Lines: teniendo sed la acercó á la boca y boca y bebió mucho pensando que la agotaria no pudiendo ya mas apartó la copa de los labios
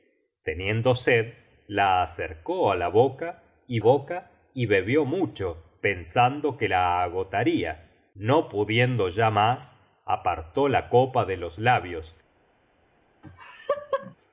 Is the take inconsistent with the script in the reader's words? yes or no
no